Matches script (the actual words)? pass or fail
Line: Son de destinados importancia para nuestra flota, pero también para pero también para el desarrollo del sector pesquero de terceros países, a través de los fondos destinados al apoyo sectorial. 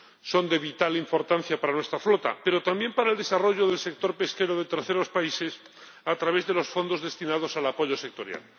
fail